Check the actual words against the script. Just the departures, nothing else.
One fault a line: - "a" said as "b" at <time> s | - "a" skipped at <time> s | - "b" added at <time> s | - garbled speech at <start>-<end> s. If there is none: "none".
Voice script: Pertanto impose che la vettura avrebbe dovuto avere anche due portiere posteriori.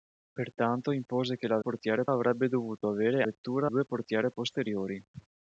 - "vettura" said as "portiere" at 1.6 s
- "anche" said as "vettura" at 3.2 s